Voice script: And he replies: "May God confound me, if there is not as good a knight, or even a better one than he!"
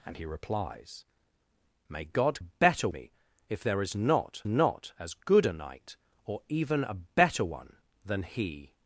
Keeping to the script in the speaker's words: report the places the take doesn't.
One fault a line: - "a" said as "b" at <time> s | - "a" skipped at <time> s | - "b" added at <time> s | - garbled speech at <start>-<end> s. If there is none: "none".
- "confound" said as "better" at 2.4 s
- "not" added at 4.5 s